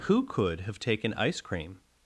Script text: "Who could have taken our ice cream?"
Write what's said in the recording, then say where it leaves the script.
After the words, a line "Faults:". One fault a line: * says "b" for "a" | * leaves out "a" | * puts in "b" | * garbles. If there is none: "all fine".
"Who could have taken ice cream?"
Faults:
* leaves out "our"